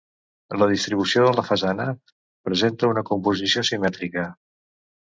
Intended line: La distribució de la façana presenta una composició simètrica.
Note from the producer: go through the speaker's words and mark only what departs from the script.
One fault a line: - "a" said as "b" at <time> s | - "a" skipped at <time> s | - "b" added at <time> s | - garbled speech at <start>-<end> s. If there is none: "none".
none